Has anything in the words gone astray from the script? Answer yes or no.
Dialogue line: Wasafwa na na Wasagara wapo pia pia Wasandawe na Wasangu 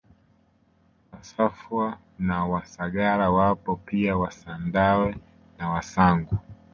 yes